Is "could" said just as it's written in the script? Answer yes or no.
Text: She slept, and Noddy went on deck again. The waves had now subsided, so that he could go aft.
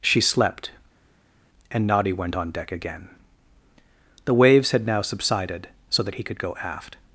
yes